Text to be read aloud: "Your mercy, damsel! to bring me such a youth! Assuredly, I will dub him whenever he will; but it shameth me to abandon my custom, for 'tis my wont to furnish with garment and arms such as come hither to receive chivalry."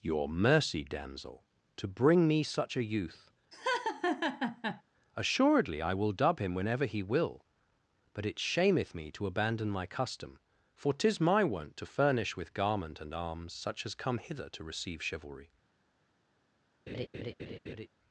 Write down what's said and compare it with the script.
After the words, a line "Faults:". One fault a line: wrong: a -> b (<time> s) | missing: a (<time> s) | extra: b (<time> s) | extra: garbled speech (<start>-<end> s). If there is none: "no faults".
"Your mercy, damsel! to bring me such a youth! Assuredly, I will dub him whenever he will; but it shameth me to abandon my custom, for 'tis my wont to furnish with garment and arms such as come hither to receive chivalry."
Faults:
no faults